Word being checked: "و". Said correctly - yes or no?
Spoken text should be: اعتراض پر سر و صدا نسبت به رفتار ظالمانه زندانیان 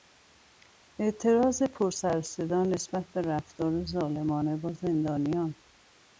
yes